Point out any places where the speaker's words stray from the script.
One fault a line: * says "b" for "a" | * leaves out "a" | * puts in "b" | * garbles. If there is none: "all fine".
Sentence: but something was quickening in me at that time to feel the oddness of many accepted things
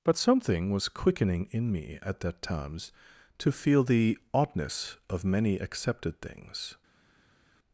* says "times" for "time"